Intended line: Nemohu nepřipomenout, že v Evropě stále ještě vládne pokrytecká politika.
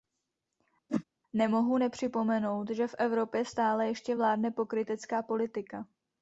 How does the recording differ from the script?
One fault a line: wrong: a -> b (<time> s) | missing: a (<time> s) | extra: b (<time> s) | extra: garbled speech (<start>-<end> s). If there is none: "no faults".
no faults